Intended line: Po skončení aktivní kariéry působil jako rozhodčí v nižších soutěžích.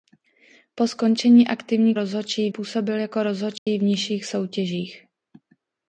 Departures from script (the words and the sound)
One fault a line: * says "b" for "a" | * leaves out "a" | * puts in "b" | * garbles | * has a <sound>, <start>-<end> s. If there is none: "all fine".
* says "rozhodčí" for "kariéry"
* has a dropout, 3.6-3.7 s